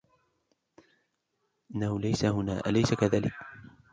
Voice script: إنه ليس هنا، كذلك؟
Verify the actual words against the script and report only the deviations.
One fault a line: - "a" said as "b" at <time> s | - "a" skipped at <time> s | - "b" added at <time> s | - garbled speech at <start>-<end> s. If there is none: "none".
- "أليس" added at 2.6 s